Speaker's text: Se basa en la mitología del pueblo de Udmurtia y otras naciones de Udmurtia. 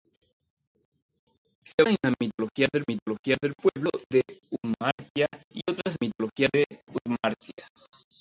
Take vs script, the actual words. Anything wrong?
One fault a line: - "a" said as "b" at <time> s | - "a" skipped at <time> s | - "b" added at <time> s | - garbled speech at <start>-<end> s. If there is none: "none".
- "basa" skipped at 1.8 s
- "mitología del" added at 2.9 s
- "naciones" said as "mitología" at 6.0 s